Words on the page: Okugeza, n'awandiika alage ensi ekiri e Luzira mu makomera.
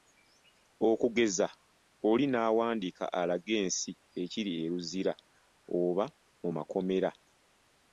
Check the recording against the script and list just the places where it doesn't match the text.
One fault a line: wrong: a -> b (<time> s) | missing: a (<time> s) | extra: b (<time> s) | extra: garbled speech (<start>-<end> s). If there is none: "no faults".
extra: oli (2.1 s)
extra: oba (5.8 s)